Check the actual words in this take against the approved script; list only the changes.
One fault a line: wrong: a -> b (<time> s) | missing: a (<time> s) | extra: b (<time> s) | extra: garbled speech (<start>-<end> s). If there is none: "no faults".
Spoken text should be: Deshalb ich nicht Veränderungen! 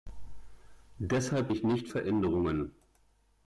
no faults